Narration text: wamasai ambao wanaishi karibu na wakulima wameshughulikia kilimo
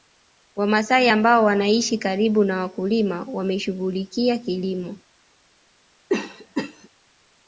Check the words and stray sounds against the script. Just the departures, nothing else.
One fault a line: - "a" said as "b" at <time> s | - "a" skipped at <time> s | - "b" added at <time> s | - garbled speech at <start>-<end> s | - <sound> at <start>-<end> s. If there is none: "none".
- cough at 6.1-6.9 s